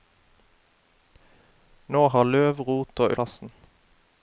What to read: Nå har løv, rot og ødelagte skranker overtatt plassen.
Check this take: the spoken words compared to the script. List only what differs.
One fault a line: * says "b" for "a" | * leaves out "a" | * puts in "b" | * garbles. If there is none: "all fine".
* leaves out "ødelagte skranker overtatt"